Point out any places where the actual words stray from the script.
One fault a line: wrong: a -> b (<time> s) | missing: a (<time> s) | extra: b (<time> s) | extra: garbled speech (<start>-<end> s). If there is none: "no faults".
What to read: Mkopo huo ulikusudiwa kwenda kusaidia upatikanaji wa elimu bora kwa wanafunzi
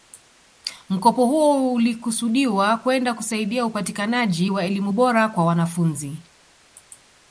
no faults